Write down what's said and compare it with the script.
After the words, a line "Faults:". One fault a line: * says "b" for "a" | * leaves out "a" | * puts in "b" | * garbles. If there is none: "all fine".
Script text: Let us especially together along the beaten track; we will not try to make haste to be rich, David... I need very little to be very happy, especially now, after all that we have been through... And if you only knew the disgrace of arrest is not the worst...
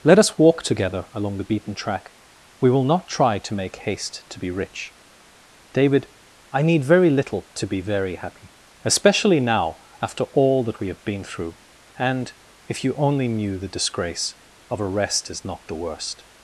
Let us walk together along the beaten track; we will not try to make haste to be rich, David... I need very little to be very happy, especially now, after all that we have been through... And if you only knew the disgrace of arrest is not the worst...
Faults:
* says "walk" for "especially"